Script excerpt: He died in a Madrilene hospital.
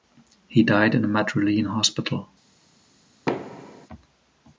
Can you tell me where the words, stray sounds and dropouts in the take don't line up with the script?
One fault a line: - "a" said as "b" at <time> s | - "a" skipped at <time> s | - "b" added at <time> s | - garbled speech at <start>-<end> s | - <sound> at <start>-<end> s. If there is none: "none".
- thud at 3.3-3.9 s